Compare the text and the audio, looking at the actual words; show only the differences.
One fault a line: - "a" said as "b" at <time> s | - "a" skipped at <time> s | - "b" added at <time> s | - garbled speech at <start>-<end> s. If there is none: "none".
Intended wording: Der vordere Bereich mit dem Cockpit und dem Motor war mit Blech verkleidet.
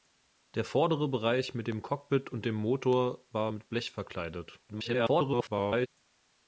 - garbled speech at 4.7-5.9 s